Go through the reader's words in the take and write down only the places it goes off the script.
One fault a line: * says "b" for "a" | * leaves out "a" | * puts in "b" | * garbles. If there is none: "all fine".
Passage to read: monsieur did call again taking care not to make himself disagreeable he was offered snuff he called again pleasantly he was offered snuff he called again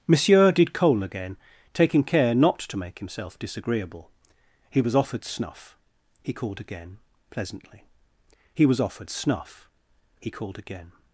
* says "coal" for "call"